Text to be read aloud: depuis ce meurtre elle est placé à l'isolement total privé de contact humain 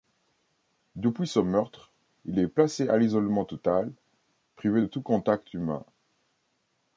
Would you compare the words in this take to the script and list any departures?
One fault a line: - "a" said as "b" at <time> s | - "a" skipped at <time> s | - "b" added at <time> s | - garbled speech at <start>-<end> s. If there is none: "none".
- "elle" said as "il" at 2.2 s
- "tout" added at 4.9 s